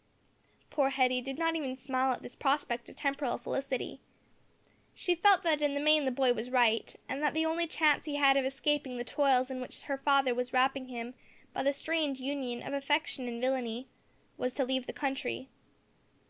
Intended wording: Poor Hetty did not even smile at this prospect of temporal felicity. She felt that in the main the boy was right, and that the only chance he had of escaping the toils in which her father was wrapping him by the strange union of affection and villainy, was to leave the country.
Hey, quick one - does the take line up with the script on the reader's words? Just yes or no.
yes